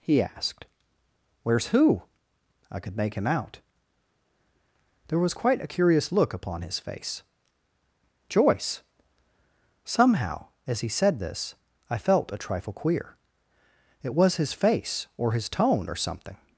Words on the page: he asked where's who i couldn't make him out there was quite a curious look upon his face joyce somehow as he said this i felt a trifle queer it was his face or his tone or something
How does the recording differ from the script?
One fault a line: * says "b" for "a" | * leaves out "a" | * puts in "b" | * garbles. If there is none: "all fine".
* says "could" for "couldn't"